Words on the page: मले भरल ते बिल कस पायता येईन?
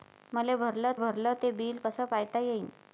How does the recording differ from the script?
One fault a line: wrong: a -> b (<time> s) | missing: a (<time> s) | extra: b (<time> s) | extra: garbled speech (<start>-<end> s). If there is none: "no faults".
extra: भरल (1.0 s)